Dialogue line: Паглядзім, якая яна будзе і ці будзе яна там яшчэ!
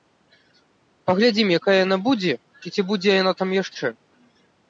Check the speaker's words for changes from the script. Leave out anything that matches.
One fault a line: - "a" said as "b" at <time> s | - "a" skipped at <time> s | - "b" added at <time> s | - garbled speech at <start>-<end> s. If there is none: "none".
none